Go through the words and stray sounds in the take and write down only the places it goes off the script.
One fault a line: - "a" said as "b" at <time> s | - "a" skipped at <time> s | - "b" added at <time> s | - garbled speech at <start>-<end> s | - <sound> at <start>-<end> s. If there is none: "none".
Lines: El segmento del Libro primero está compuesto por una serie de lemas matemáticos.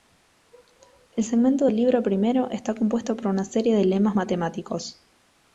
none